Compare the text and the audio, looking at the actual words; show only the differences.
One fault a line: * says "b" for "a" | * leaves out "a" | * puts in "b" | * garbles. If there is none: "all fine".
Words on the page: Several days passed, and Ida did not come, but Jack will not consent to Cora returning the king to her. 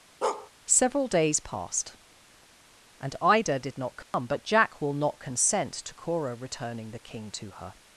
all fine